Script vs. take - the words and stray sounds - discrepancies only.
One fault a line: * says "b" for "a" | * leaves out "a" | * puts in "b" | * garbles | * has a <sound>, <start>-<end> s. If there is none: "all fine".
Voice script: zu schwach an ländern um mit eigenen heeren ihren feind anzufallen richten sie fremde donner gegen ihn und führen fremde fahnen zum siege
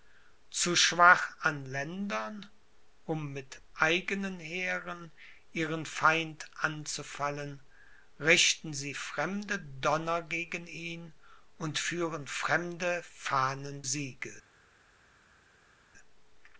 * leaves out "zum"